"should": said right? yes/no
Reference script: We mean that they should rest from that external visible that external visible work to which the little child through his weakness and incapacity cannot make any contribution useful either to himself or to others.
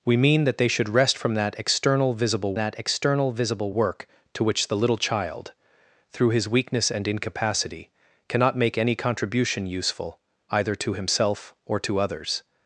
yes